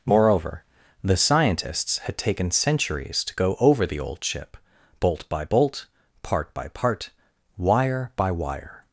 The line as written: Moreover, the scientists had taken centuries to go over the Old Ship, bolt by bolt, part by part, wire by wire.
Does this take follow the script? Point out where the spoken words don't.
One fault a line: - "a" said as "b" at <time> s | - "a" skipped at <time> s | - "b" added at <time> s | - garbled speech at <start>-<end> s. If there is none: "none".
none